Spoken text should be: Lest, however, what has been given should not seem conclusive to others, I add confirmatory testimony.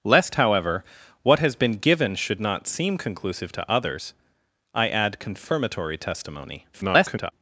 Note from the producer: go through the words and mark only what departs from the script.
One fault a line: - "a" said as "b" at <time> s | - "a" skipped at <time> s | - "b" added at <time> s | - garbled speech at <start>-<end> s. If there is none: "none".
- garbled speech at 6.7-7.3 s